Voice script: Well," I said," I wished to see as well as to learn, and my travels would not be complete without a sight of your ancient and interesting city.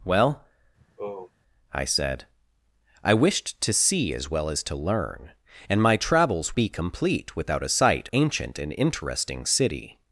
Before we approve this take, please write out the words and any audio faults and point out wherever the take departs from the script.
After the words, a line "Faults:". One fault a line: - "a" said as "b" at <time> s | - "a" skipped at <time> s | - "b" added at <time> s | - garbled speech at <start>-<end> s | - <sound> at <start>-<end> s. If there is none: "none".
Well," I said," I wished to see as well as to learn, and my travels be complete without a sight ancient and interesting city.
Faults:
- sigh at 0.8-1.3 s
- "would not" skipped at 6.5 s
- "of your" skipped at 8.1 s